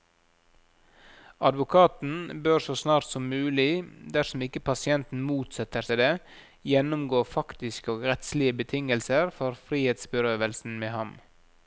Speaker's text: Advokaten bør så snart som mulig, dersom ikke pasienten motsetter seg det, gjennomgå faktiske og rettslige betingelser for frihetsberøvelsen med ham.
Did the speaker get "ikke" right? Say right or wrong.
right